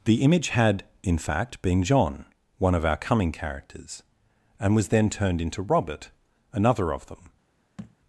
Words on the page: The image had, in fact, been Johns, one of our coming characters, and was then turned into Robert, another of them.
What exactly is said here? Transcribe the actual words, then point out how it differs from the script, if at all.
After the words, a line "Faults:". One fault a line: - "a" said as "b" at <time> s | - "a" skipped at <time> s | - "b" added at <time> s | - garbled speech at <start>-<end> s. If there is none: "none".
The image had, in fact, been John, one of our coming characters, and was then turned into Robert, another of them.
Faults:
- "Johns" said as "John" at 1.8 s